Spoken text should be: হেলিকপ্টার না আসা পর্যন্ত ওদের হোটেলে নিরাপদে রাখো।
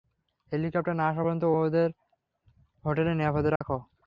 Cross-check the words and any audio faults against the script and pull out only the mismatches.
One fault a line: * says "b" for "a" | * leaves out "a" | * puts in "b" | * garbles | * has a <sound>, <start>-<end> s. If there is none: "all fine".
* has a dropout, 3.6-3.6 s